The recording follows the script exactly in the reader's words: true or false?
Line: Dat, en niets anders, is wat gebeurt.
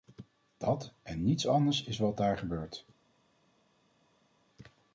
false